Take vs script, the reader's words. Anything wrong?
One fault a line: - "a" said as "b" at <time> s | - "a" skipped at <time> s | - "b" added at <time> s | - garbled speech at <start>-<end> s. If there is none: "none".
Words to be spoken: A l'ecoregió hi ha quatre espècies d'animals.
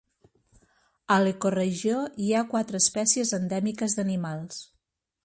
- "endèmiques" added at 3.4 s